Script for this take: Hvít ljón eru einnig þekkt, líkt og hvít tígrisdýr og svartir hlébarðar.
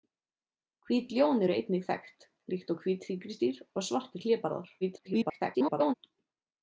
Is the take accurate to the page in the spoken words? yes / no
no